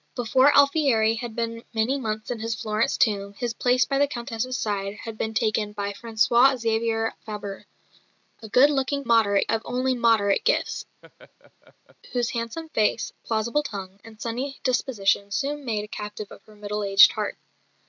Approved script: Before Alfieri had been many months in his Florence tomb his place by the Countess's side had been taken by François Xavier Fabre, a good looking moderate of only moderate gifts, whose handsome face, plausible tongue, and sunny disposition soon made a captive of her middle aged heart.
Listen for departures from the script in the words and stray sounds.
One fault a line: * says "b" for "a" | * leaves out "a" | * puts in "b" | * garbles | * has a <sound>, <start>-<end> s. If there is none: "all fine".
* has a laugh, 11.0-12.0 s